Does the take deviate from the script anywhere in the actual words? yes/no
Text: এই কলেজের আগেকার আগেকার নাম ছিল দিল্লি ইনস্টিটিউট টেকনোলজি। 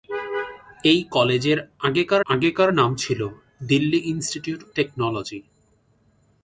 no